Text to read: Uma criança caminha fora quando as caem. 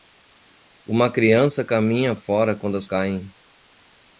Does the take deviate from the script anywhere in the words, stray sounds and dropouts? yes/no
no